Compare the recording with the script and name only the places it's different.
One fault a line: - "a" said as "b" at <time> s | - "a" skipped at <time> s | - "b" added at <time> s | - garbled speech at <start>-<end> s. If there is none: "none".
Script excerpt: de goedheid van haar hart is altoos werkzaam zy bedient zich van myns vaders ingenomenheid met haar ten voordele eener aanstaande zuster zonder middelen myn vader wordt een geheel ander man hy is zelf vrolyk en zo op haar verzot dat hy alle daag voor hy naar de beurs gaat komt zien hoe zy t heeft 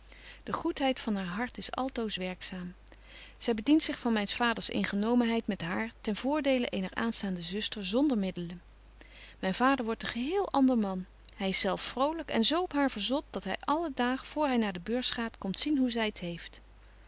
none